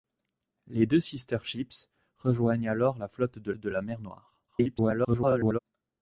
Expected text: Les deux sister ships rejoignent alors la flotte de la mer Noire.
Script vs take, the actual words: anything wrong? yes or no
yes